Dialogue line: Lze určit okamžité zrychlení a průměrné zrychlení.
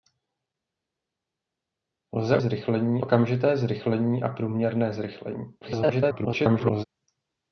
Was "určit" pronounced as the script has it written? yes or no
no